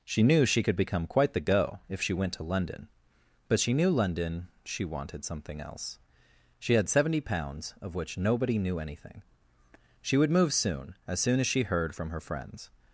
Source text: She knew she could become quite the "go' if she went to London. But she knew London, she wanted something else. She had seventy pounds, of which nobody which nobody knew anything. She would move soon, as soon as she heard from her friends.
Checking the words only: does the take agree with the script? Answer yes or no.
no